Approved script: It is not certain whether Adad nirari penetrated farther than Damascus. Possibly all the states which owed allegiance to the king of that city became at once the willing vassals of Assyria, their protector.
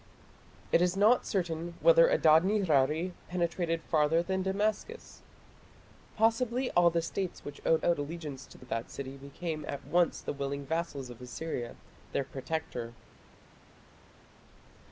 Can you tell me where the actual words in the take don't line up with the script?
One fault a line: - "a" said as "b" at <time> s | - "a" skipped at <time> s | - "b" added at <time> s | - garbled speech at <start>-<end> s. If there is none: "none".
- "owed" added at 7.8 s
- "king" skipped at 8.6 s